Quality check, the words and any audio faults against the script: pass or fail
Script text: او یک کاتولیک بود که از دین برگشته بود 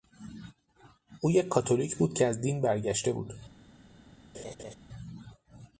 fail